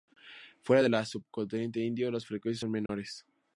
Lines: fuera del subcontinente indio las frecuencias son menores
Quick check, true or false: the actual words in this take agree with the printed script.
true